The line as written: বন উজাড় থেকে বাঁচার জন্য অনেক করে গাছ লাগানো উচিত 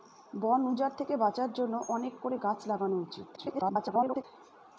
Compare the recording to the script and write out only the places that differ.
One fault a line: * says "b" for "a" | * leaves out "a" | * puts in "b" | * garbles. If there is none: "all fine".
* garbles